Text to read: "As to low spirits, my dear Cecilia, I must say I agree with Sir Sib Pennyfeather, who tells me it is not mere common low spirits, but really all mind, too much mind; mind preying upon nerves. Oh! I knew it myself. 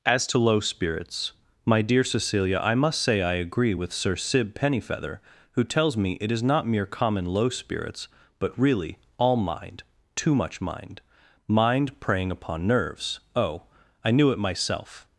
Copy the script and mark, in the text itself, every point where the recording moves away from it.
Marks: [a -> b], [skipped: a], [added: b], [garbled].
"As to low spirits, my dear Cecilia, I must say I agree with Sir Sib Pennyfeather, who tells me it is not mere common low spirits, but really all mind, too much mind; mind preying upon nerves. Oh! I knew it myself.